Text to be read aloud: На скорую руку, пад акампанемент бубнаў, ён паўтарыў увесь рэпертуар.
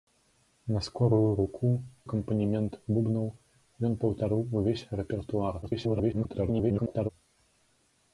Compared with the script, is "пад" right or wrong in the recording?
wrong